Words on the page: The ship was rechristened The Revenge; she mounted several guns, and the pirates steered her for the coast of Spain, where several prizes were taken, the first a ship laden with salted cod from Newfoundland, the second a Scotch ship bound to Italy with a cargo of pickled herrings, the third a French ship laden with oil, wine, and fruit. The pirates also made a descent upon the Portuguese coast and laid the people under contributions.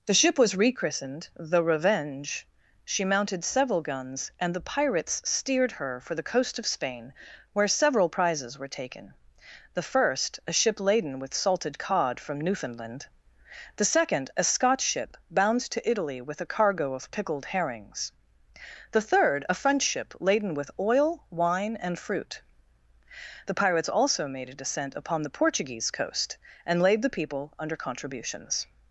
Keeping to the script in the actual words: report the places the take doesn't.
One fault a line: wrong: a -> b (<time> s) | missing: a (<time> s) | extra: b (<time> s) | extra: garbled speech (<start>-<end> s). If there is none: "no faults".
no faults